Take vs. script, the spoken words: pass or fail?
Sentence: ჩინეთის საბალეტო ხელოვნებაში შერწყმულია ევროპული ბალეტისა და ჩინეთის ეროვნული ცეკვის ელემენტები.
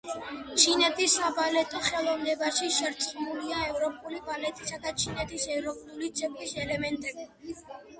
pass